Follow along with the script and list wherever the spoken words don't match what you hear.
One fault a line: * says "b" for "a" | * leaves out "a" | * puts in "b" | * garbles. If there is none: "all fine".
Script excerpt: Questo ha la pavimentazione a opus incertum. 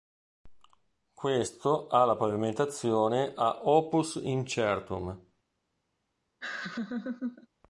all fine